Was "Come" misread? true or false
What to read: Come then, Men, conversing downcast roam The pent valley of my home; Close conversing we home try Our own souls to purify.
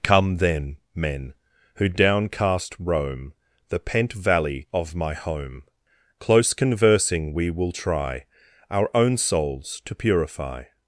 false